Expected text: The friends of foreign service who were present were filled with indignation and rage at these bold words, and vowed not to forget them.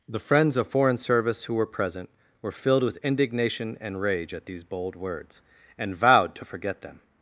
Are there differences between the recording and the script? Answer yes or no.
yes